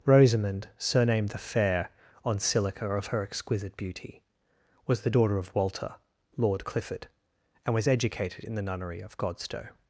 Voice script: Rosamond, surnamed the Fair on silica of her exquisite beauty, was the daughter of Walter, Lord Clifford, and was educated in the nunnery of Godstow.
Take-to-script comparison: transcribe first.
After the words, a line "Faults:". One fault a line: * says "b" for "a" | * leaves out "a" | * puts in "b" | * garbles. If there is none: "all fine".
Rosamond, surnamed the Fair on silica of her exquisite beauty, was the daughter of Walter, Lord Clifford, and was educated in the nunnery of Godstow.
Faults:
all fine